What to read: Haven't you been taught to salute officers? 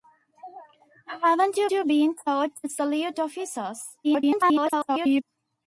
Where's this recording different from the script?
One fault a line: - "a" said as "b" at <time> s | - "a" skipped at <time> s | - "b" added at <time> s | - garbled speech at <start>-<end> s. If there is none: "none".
- "you" added at 1.7 s
- garbled speech at 4.0-5.2 s